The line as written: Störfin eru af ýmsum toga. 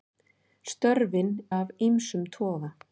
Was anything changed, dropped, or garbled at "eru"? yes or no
yes